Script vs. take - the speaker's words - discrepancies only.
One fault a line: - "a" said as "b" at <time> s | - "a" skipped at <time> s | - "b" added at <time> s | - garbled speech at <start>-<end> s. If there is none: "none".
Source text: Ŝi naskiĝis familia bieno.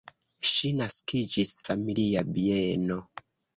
none